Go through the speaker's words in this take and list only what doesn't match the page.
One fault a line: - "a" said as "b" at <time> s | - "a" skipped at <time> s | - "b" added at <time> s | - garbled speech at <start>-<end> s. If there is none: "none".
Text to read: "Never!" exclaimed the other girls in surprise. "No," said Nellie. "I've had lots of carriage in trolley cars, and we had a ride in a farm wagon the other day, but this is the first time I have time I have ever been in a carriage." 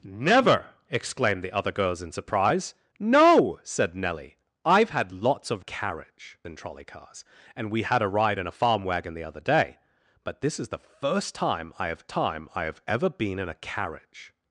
none